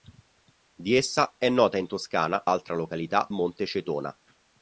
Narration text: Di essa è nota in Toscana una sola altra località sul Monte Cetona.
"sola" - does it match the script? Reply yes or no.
no